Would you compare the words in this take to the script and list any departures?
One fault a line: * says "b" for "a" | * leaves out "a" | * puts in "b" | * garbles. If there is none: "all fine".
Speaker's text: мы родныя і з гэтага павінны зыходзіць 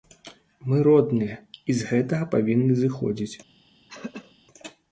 all fine